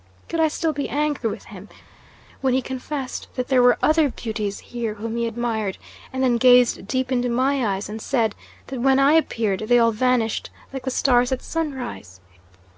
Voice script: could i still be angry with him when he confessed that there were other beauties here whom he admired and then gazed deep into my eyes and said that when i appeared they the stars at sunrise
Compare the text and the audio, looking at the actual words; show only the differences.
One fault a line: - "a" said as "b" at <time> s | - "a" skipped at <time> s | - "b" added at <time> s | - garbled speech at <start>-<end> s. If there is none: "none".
- "all vanished like" added at 9.8 s